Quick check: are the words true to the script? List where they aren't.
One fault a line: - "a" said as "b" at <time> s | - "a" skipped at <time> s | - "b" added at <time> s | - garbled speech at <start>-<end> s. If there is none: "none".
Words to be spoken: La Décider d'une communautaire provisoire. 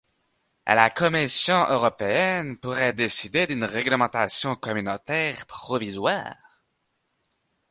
- "Commission européenne pourrait" added at 0.9 s
- "réglementation" added at 3.6 s